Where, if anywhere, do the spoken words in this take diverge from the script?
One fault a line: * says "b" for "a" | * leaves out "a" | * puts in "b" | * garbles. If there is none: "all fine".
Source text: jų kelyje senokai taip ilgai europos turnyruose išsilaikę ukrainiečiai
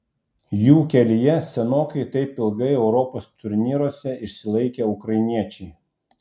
all fine